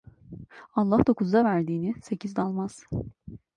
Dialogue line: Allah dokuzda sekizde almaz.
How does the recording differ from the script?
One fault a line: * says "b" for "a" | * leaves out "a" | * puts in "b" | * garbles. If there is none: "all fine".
* puts in "verdiğini"